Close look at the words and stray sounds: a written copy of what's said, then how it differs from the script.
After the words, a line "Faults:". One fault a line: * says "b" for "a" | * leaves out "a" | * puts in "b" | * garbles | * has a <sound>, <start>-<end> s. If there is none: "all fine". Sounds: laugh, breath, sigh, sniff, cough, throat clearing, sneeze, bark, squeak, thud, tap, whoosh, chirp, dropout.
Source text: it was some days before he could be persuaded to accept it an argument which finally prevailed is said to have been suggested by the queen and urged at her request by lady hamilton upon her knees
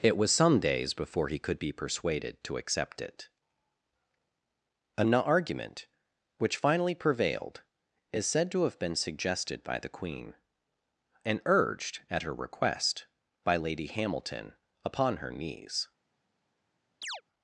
it was some days before he could be persuaded to accept it an argument which finally prevailed is said to have been suggested by the queen and urged at her request by lady hamilton upon her knees
Faults:
* has a chirp, 17.0-17.2 s